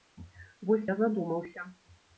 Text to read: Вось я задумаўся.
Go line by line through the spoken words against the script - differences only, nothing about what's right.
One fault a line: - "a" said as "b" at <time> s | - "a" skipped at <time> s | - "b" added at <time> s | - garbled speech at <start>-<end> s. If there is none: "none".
none